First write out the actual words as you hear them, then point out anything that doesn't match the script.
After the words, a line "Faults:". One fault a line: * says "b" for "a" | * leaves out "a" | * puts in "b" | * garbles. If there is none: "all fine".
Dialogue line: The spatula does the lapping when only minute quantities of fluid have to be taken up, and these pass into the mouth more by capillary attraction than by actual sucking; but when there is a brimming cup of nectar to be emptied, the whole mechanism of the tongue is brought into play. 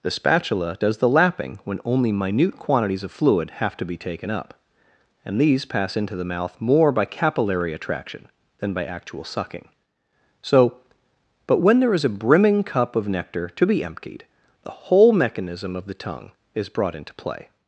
The spatula does the lapping when only minute quantities of fluid have to be taken up, and these pass into the mouth more by capillary attraction than by actual sucking; so but when there is a brimming cup of nectar to be emptied, the whole mechanism of the tongue is brought into play.
Faults:
* puts in "so"